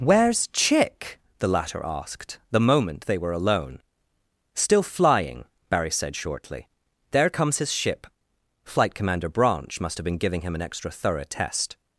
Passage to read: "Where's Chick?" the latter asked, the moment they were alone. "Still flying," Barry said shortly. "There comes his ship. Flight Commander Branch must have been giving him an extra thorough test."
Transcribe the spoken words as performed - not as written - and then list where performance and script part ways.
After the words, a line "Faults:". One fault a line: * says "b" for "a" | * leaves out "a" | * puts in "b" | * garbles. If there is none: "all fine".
"Where's Chick?" the latter asked, the moment they were alone. "Still flying," Barry said shortly. "There comes his ship. Flight Commander Branch must have been giving him an extra thorough test."
Faults:
all fine